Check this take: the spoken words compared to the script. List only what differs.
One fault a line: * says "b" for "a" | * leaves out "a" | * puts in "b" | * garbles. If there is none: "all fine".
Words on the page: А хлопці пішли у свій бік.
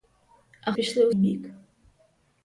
* leaves out "хлопці"
* leaves out "свій"